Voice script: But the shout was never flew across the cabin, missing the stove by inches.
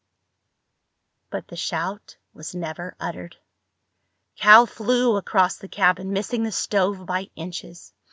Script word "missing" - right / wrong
right